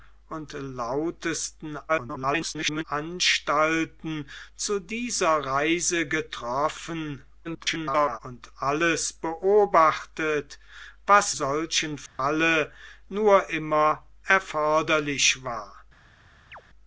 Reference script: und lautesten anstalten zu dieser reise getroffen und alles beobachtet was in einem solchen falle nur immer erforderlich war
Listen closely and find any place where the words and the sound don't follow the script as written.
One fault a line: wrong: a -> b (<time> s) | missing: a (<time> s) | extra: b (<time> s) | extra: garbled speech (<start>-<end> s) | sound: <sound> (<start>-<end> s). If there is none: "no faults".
extra: garbled speech (1.9-2.8 s)
extra: garbled speech (7.4-8.2 s)
missing: in einem (11.3 s)
sound: dropout (12.1-12.2 s)
sound: chirp (16.5-16.6 s)